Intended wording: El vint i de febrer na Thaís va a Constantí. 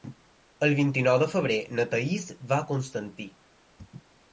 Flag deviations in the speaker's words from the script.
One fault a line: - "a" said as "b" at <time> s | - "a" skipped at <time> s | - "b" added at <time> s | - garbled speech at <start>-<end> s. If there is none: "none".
- "nou" added at 1.1 s